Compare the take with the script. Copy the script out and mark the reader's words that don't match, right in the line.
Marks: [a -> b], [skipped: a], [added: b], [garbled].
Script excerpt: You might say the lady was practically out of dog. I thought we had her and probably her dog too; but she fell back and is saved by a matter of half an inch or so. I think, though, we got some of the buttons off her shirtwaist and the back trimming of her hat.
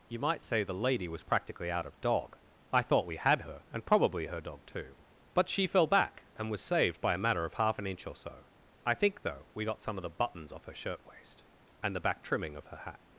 You might say the lady was practically out of dog. I thought we had her and probably her dog too; but she fell back and [is -> was] saved by a matter of half an inch or so. I think, though, we got some of the buttons off her shirtwaist and the back trimming of her hat.